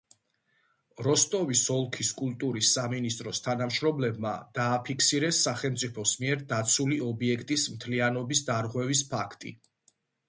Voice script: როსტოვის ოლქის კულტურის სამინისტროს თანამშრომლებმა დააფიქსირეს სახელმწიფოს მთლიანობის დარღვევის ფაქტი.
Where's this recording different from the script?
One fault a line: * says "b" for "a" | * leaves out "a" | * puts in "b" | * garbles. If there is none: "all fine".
* puts in "მიერ დაცული ობიექტის"